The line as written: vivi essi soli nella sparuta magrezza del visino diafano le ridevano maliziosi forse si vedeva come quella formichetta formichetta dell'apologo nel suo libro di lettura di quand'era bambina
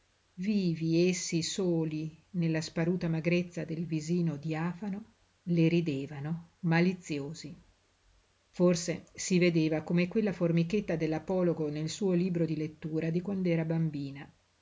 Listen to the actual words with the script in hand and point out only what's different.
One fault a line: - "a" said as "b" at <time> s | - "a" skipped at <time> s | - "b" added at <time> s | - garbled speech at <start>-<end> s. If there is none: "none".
- "formichetta" skipped at 10.9 s